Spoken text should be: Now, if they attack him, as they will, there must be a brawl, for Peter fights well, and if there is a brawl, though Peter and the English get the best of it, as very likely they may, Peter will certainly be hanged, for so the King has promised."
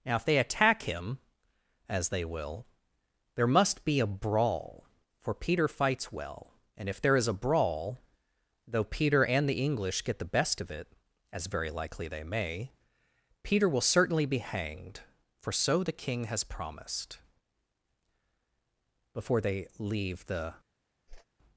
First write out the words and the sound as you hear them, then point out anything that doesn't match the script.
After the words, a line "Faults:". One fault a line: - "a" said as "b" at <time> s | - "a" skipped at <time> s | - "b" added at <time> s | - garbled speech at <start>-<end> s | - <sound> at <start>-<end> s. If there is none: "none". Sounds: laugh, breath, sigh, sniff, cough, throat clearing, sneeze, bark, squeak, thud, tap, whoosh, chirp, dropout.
Now, if they attack him, as they will, there must be a brawl, for Peter fights well, and if there is a brawl, though Peter and the English get the best of it, as very likely they may, Peter will certainly be hanged, for so the King has promised." "Before they leave the
Faults:
- "Before they leave the" added at 19.2 s
- whoosh at 21.1-21.3 s